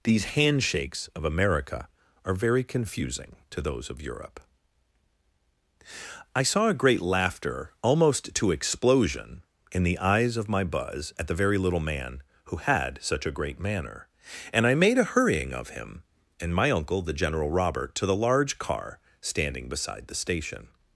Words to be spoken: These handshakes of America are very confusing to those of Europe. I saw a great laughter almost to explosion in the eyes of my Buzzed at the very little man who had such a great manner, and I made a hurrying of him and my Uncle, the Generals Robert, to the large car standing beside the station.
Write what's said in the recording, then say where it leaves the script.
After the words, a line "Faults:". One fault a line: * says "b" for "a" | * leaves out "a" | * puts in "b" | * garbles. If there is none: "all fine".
These handshakes of America are very confusing to those of Europe. I saw a great laughter almost to explosion in the eyes of my Buzz at the very little man who had such a great manner, and I made a hurrying of him and my Uncle, the General Robert, to the large car standing beside the station.
Faults:
* says "Buzz" for "Buzzed"
* says "General" for "Generals"